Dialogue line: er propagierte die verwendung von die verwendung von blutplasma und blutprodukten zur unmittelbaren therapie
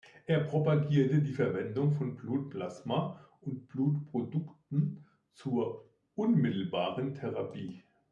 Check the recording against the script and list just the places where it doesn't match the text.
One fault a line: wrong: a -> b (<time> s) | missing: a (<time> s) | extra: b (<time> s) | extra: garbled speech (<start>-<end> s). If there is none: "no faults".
missing: die verwendung von (2.1 s)